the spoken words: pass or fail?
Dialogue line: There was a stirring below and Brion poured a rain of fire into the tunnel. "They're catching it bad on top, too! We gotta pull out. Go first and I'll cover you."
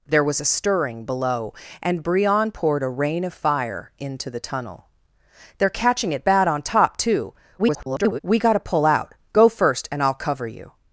fail